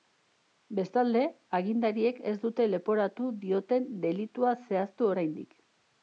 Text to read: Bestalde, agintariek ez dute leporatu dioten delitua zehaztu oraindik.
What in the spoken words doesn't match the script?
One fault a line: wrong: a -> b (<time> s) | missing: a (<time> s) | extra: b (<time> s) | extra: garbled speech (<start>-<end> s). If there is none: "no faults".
no faults